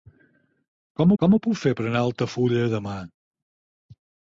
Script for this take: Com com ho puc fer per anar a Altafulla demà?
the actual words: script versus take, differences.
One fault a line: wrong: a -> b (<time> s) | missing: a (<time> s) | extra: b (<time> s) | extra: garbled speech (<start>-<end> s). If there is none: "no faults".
no faults